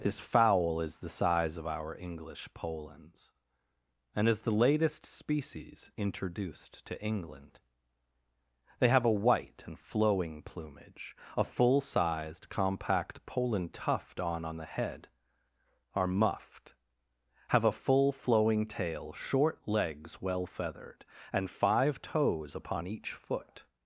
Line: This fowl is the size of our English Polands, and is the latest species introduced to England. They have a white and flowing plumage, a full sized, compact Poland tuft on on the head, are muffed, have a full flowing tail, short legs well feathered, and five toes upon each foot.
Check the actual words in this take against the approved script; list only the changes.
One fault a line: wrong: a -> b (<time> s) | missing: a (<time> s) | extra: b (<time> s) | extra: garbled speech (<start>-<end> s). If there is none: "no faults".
no faults